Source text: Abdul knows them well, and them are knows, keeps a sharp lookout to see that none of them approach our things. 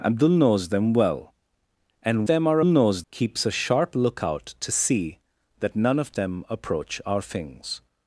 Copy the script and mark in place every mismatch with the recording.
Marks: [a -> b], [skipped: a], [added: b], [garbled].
Abdul knows them well, and them are knows, keeps a sharp lookout to see that none of them approach our things.